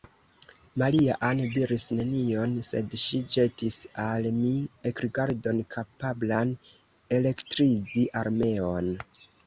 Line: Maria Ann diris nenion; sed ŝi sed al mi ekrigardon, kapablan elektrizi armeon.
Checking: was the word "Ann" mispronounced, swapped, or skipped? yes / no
no